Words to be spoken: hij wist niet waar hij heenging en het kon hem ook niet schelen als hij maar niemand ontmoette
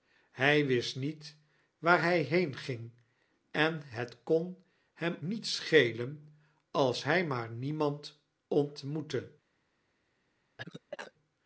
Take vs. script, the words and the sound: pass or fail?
fail